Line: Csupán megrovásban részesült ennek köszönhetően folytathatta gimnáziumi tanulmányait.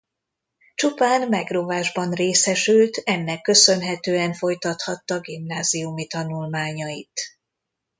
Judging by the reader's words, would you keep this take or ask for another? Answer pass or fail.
pass